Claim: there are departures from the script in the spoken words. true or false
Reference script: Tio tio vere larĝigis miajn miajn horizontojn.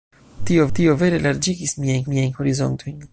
false